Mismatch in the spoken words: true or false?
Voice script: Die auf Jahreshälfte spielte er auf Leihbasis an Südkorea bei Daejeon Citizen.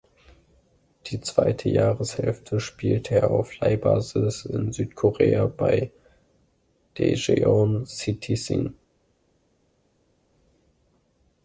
true